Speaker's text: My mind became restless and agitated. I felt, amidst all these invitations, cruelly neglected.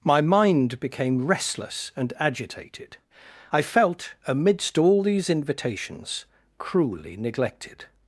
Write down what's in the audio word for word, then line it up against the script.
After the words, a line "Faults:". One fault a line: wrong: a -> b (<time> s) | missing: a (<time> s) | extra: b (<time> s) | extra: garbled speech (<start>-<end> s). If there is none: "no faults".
My mind became restless and agitated. I felt, amidst all these invitations, cruelly neglected.
Faults:
no faults